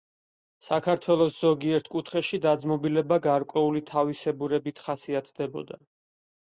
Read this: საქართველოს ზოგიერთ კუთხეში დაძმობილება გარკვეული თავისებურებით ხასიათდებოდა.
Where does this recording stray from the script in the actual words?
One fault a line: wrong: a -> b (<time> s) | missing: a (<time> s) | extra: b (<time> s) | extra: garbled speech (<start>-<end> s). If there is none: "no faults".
no faults